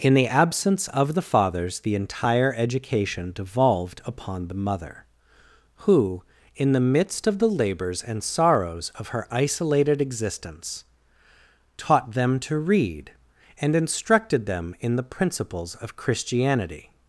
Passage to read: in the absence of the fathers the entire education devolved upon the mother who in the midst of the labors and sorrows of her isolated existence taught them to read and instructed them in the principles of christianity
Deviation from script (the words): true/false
false